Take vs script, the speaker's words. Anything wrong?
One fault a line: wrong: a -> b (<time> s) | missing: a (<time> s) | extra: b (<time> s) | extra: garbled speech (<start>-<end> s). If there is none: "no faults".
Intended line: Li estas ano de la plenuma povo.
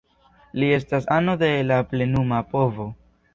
no faults